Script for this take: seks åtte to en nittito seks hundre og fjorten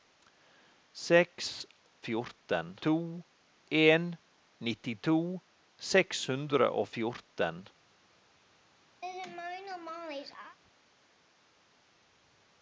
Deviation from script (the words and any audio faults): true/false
true